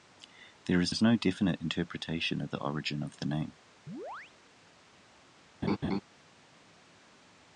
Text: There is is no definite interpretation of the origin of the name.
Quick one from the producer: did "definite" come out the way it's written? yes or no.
yes